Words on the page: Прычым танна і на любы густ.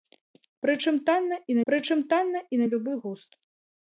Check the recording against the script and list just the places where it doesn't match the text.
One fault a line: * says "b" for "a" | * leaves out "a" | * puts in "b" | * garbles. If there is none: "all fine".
* puts in "прычым танна і"